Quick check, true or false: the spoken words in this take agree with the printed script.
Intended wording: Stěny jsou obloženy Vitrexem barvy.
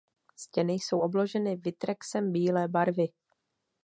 false